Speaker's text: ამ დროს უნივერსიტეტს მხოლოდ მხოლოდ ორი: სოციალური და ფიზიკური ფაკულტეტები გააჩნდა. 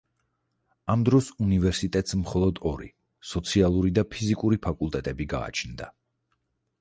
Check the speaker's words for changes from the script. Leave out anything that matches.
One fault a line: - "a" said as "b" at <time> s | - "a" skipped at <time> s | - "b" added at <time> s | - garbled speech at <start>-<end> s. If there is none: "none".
- "მხოლოდ" skipped at 2.6 s